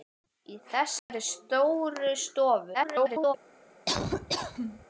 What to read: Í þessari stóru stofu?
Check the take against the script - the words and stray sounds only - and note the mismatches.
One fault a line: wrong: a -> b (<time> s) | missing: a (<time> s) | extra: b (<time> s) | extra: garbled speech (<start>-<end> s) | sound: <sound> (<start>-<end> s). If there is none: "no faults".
sound: dropout (1.0-1.1 s)
extra: garbled speech (2.7-3.3 s)
sound: laugh (3.9-4.9 s)